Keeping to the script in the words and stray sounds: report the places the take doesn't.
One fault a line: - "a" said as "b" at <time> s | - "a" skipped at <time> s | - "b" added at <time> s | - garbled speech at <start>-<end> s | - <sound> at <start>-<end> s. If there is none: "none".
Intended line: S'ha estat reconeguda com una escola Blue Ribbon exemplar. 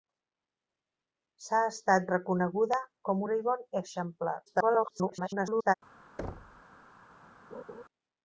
- "una escola Blue" skipped at 3.3 s
- garbled speech at 4.5-5.7 s
- thud at 6.2-6.6 s
- laugh at 7.5-7.8 s